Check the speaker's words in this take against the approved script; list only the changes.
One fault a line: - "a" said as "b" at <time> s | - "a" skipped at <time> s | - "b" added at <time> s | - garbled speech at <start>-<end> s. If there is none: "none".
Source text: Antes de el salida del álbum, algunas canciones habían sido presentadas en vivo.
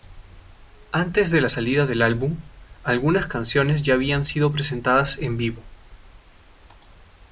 - "el" said as "la" at 1.4 s
- "ya" added at 3.8 s